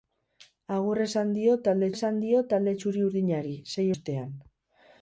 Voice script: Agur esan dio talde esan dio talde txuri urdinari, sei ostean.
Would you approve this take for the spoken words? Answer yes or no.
yes